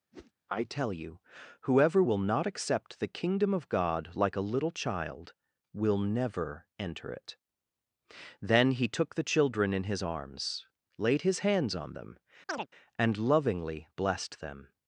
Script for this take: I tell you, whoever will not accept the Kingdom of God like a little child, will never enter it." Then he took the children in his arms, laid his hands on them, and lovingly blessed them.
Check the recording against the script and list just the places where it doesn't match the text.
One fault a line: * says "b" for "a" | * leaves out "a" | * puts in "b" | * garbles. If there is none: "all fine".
all fine